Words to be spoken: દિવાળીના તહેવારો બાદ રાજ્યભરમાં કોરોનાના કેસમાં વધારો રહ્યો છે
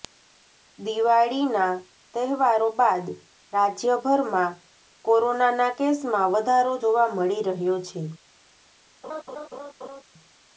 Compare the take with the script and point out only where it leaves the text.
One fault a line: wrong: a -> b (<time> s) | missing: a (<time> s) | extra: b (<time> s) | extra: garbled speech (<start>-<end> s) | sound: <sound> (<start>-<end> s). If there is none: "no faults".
extra: જોવા મળી (6.8 s)
sound: laugh (9.0-10.0 s)